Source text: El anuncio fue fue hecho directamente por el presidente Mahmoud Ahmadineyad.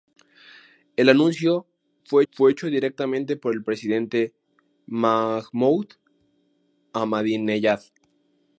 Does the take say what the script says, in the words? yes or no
yes